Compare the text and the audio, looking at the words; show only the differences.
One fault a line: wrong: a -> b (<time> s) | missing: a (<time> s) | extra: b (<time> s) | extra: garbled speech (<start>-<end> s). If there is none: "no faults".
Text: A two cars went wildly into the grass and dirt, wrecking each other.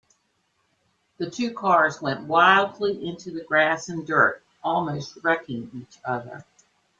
wrong: A -> The (1.2 s)
extra: almost (4.6 s)